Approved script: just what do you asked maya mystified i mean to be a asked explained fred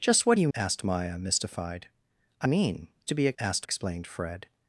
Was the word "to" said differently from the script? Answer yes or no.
no